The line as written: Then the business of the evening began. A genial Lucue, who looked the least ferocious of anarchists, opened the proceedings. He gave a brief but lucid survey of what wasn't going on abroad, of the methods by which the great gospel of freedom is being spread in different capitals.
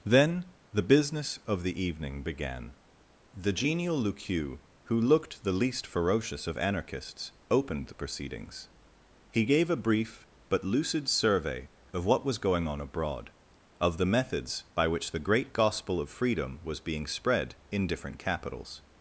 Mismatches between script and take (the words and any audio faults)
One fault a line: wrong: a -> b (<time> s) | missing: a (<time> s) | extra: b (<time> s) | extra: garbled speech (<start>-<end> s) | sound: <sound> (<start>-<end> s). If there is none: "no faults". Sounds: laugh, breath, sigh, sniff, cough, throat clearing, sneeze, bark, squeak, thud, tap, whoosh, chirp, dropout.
wrong: A -> The (3.4 s)
wrong: wasn't -> was (12.2 s)
wrong: is -> was (16.6 s)